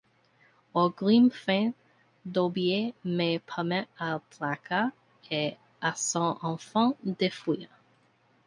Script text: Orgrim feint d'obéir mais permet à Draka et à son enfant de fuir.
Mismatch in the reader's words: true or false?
false